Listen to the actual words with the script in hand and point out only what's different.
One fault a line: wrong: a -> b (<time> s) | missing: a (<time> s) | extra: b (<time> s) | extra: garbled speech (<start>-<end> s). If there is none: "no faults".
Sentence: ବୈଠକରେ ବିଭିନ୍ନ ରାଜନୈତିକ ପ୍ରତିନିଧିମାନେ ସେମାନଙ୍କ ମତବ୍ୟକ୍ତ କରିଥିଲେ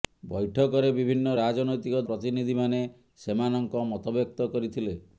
no faults